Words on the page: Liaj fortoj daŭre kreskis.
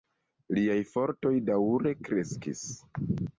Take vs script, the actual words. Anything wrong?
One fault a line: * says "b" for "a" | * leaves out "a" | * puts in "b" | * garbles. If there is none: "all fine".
all fine